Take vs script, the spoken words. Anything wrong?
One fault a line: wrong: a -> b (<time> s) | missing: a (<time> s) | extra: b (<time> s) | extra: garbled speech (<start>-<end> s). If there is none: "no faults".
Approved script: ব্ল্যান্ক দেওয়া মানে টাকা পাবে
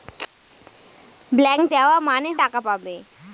no faults